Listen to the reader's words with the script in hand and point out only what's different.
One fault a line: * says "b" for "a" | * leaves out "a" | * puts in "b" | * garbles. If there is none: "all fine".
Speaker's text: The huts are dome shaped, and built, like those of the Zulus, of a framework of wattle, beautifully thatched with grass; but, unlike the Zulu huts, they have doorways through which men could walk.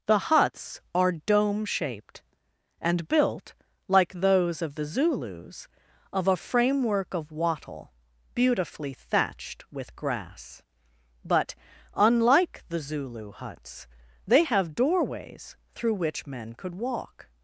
all fine